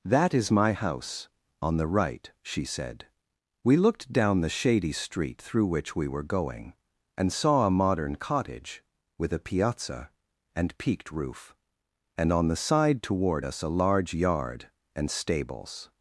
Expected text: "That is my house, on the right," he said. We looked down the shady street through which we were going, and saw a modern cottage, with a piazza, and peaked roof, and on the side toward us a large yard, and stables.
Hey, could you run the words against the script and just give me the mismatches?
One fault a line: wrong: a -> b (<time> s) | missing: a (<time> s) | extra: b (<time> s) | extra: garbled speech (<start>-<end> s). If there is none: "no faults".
wrong: he -> she (2.4 s)